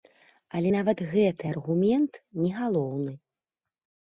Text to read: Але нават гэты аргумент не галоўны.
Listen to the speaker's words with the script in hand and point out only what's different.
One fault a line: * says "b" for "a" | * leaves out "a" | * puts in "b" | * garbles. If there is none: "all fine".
all fine